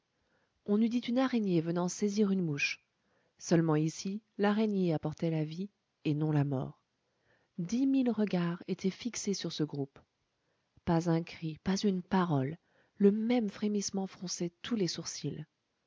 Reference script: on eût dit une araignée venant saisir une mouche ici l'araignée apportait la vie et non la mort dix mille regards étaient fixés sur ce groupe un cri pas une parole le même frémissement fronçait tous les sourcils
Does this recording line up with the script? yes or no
no